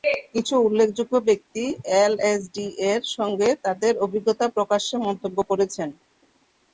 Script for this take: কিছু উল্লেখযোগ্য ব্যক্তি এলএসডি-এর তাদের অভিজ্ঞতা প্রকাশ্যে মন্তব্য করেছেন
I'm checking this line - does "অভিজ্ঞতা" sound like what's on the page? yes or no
yes